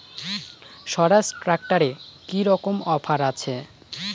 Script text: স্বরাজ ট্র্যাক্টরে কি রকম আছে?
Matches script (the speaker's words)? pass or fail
fail